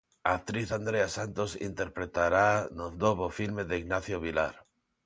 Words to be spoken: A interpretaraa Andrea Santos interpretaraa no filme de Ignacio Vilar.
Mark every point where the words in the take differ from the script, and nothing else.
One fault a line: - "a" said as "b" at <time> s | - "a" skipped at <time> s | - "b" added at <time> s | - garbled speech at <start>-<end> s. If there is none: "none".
- "interpretaraa" said as "actriz" at 0.4 s
- "novo" added at 3.0 s